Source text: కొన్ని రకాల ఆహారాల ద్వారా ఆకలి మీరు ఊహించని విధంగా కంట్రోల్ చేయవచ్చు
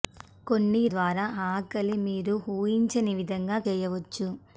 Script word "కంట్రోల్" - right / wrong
wrong